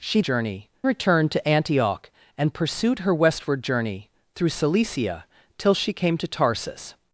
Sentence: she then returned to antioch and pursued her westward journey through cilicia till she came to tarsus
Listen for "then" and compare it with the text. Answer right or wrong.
wrong